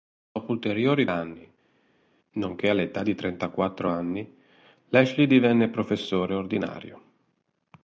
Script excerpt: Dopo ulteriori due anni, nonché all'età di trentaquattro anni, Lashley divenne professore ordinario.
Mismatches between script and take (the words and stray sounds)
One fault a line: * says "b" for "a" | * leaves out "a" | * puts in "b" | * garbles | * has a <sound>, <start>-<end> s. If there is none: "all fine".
* leaves out "due"